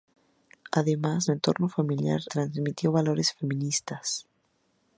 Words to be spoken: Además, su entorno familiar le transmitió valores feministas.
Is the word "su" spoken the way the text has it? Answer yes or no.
no